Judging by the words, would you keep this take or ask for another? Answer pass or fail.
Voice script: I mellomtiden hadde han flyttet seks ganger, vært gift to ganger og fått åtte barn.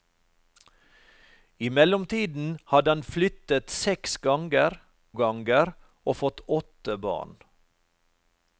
fail